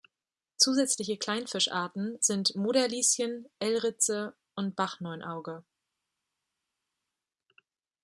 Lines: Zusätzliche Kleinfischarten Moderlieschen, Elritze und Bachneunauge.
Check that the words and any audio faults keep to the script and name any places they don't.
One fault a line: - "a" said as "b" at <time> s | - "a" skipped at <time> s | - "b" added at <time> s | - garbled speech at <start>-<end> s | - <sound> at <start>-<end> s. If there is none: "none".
- "sind" added at 2.2 s